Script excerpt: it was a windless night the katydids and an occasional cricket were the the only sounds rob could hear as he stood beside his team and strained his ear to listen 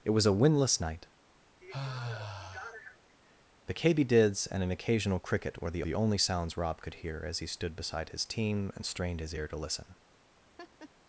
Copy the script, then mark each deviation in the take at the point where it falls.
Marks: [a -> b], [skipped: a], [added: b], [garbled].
it was a windless night the katydids and an occasional cricket were the the only sounds rob could hear as he stood beside his team and strained his ear to listen